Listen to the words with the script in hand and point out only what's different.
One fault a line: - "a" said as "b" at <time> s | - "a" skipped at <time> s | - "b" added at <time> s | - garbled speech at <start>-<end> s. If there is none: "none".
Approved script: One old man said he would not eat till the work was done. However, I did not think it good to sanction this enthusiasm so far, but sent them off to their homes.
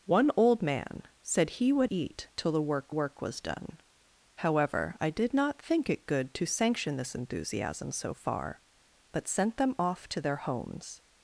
- "not" skipped at 1.9 s
- "work" added at 2.9 s